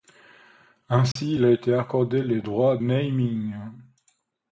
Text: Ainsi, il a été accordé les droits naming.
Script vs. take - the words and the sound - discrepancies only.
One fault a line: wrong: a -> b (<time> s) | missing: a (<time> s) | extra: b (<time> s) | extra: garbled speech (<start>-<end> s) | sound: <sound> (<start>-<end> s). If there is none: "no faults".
sound: dropout (1.1-1.2 s)